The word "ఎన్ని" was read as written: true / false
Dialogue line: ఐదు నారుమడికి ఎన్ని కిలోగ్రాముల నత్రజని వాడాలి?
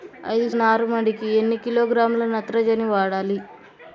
true